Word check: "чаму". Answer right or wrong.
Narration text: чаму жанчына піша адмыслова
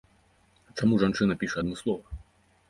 right